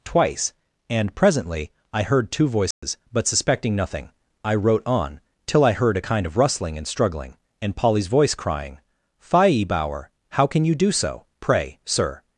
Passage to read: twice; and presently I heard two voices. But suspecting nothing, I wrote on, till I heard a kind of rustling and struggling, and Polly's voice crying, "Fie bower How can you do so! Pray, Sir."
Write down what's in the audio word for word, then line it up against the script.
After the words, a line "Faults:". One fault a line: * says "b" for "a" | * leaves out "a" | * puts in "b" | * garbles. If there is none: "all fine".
twice; and presently I heard two voices. But suspecting nothing, I wrote on, till I heard a kind of rustling and struggling, and Polly's voice crying, "Fie bower How can you do so! Pray, Sir."
Faults:
all fine